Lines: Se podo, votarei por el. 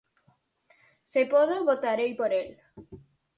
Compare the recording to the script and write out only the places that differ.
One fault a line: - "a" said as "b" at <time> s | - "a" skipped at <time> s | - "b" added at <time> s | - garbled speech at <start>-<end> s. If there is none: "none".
none